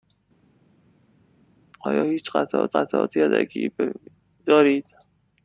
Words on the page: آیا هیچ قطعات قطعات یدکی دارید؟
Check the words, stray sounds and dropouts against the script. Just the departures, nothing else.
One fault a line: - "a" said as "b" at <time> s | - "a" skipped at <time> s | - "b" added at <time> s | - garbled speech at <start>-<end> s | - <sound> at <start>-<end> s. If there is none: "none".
none